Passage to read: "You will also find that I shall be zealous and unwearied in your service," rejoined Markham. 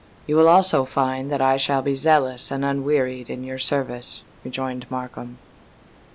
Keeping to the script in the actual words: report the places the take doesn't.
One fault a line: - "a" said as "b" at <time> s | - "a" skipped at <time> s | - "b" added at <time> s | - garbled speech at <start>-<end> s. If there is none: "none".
none